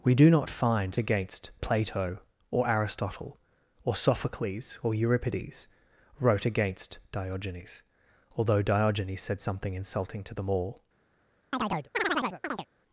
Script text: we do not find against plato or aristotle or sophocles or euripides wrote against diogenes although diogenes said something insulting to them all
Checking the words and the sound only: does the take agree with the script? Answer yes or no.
no